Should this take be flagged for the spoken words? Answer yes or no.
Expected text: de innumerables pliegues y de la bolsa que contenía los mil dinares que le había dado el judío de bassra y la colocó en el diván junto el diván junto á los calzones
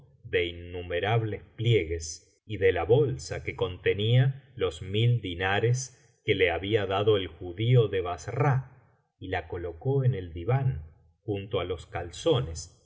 yes